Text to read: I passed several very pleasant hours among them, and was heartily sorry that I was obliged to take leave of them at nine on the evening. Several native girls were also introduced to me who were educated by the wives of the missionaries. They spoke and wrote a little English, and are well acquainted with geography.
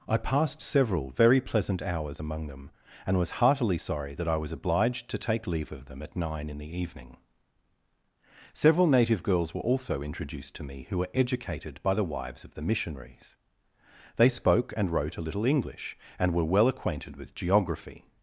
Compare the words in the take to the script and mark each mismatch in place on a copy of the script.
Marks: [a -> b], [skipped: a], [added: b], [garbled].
I passed several very pleasant hours among them, and was heartily sorry that I was obliged to take leave of them at nine [on -> in] the evening. Several native girls were also introduced to me who were educated by the wives of the missionaries. They spoke and wrote a little English, and [are -> were] well acquainted with geography.